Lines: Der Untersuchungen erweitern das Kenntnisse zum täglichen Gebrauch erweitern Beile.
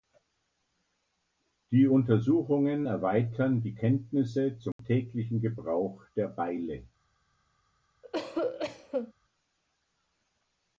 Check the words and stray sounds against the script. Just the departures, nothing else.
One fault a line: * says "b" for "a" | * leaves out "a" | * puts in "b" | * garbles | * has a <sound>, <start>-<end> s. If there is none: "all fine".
* says "Die" for "Der"
* says "die" for "das"
* has a dropout, 4.7-4.8 s
* says "der" for "erweitern"
* has a cough, 8.0-9.1 s